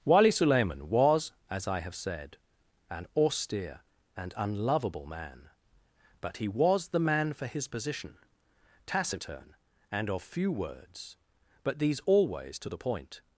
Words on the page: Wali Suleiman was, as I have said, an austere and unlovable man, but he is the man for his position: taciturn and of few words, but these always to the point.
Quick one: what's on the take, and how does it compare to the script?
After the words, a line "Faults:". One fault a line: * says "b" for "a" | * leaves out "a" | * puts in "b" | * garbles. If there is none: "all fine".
Wali Suleiman was, as I have said, an austere and unlovable man, but he was the man for his position: taciturn and of few words, but these always to the point.
Faults:
* says "was" for "is"